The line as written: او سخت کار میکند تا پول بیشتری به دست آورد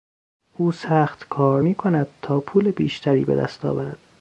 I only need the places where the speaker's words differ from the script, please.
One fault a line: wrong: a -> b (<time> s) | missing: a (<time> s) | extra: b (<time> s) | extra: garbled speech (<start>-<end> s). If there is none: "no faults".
no faults